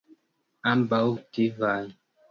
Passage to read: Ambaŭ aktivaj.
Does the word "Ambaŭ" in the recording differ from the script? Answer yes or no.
no